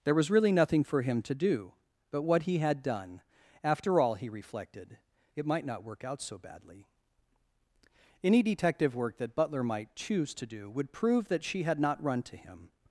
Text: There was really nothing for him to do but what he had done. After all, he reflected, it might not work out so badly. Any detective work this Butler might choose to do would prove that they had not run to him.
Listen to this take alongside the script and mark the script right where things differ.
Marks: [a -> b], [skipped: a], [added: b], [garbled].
There was really nothing for him to do but what he had done. After all, he reflected, it might not work out so badly. Any detective work [this -> that] Butler might choose to do would prove that [they -> she] had not run to him.